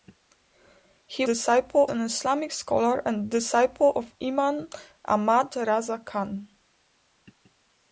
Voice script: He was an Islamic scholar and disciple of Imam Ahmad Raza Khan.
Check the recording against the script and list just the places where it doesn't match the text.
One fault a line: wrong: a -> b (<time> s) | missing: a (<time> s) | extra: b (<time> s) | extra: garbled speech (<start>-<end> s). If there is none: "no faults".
wrong: was -> disciple (1.2 s)